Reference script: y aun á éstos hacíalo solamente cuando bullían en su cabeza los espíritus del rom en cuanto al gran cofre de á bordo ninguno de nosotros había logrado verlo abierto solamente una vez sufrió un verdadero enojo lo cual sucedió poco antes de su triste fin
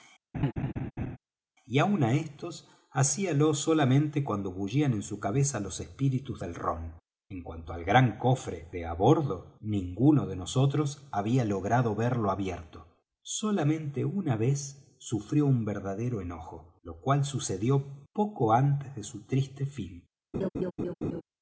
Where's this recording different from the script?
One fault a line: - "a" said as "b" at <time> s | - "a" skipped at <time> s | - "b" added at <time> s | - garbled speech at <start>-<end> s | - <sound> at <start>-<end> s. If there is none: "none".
- laugh at 0.3-1.2 s
- laugh at 20.3-21.2 s